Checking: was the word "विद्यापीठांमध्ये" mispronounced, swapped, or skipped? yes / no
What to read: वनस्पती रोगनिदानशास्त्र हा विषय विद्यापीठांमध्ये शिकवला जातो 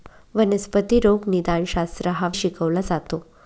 yes